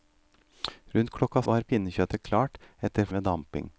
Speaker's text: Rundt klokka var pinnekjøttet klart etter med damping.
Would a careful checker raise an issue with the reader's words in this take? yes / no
no